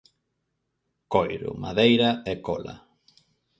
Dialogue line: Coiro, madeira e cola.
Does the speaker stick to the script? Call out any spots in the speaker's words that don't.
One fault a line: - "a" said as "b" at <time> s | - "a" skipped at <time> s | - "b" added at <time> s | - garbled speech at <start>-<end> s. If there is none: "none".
none